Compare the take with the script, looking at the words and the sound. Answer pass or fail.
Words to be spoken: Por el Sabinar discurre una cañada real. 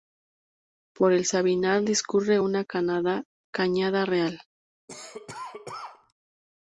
fail